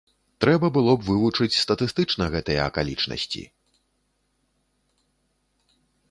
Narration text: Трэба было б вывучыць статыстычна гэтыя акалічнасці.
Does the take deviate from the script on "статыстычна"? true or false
false